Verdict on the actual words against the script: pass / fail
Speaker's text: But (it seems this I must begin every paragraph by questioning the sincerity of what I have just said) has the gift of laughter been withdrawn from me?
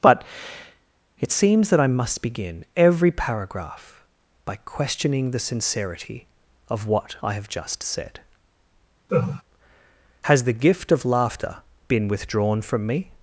fail